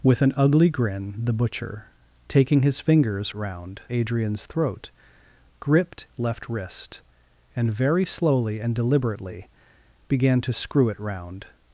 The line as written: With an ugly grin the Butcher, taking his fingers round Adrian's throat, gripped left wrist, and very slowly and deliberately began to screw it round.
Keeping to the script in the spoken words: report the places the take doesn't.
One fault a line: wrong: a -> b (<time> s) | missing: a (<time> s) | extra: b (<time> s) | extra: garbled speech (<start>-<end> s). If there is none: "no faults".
no faults